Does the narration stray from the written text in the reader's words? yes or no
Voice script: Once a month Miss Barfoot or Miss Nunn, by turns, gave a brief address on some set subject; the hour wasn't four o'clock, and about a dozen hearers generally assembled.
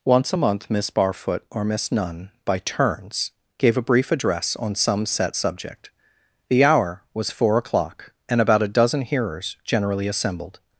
yes